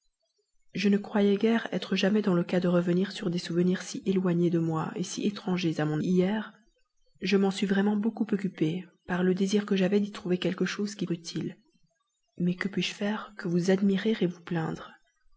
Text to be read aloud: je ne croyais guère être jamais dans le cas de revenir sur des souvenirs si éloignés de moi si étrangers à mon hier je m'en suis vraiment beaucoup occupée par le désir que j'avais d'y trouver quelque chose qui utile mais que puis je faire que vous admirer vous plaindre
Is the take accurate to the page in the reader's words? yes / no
yes